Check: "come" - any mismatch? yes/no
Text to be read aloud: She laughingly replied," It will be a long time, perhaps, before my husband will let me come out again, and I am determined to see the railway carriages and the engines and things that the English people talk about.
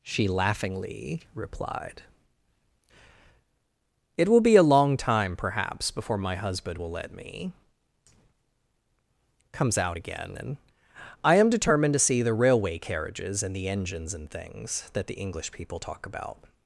yes